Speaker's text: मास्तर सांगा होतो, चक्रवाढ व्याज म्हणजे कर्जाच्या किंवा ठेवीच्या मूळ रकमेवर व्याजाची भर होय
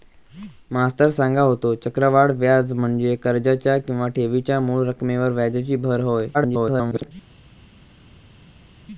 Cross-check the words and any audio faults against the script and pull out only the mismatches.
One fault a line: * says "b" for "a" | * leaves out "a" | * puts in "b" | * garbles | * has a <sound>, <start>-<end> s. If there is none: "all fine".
* garbles